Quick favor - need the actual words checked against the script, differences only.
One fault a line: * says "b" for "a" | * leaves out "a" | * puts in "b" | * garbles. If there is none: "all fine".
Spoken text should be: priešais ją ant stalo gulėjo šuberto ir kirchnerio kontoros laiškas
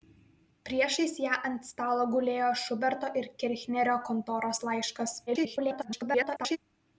* garbles